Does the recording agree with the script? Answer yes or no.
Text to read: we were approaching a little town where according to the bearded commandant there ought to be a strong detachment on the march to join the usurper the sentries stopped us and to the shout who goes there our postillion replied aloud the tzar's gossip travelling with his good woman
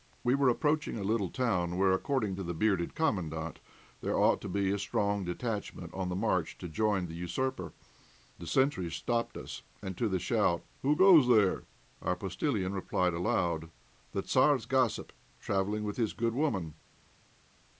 yes